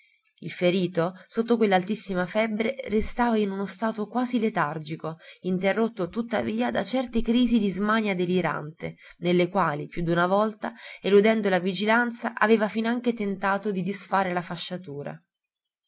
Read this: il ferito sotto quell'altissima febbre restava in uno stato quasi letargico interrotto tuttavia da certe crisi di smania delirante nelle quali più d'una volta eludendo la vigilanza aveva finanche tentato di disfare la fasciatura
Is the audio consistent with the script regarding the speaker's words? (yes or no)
yes